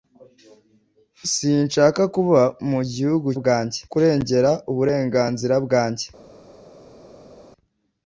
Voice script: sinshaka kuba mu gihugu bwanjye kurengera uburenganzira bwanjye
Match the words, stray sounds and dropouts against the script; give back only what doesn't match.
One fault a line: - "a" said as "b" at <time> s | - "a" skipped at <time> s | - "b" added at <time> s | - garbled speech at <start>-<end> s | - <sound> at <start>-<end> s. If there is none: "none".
none